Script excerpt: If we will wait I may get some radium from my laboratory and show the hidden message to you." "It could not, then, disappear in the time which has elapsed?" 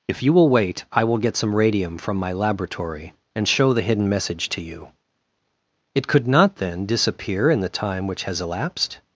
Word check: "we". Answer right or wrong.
wrong